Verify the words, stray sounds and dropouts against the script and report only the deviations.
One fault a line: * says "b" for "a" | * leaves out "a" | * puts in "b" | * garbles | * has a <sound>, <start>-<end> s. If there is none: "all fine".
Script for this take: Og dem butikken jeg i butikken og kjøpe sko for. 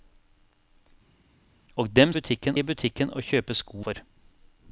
all fine